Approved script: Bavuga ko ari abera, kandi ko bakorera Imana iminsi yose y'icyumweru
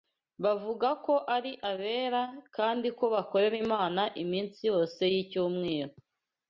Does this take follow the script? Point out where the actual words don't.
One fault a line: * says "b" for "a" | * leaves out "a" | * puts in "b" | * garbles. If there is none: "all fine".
all fine